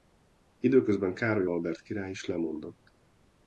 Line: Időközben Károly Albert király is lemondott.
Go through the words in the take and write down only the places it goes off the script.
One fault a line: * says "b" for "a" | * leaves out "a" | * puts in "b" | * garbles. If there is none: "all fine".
all fine